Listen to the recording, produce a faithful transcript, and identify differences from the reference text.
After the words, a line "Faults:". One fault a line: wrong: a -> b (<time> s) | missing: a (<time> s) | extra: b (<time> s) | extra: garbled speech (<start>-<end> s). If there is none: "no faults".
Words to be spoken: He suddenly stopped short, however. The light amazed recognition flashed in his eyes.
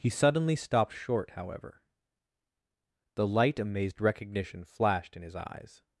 He suddenly stopped short, however. The light amazed recognition flashed in his eyes.
Faults:
no faults